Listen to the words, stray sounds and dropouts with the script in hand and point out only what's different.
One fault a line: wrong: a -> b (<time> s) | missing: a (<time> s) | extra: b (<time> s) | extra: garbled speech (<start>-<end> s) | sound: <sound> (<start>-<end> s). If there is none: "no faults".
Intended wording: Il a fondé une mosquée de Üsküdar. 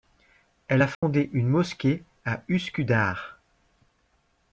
wrong: Il -> Elle (0.7 s)
sound: dropout (0.9-1.0 s)
wrong: de -> à (2.2 s)